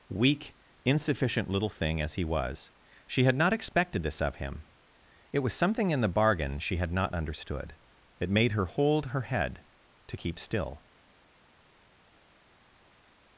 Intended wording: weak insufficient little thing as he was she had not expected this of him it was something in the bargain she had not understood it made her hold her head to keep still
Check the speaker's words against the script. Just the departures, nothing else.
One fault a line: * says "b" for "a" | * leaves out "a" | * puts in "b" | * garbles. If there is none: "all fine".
all fine